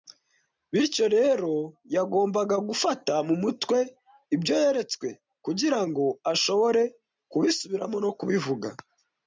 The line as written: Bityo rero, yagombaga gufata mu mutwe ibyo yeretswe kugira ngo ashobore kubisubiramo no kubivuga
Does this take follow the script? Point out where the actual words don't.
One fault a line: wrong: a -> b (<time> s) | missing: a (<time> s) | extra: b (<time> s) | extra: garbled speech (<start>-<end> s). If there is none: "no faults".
no faults